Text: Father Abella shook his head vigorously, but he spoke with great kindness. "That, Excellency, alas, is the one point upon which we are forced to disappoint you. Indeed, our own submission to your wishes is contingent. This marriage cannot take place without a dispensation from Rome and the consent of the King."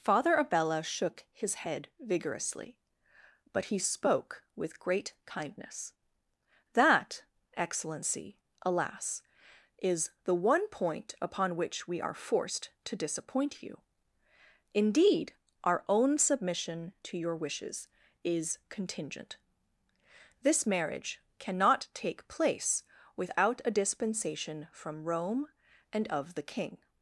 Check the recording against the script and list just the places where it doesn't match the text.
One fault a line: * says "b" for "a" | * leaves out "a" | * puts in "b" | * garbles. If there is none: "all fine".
* leaves out "the consent"